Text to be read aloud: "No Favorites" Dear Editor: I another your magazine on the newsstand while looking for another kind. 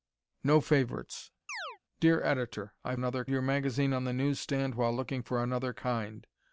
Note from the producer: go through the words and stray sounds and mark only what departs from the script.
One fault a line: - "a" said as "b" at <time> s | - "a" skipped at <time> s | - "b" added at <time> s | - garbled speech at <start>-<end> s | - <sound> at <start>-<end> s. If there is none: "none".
- chirp at 1.5-1.8 s